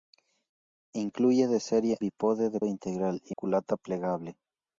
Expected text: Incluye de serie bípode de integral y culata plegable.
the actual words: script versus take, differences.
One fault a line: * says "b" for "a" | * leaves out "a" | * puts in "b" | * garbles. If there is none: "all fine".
all fine